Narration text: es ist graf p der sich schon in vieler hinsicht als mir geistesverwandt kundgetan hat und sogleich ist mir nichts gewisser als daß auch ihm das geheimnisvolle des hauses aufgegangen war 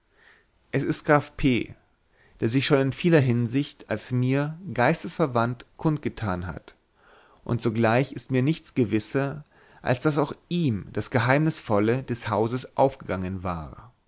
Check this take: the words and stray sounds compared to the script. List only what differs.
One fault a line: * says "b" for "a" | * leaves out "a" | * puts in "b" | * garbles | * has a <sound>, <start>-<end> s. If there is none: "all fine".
all fine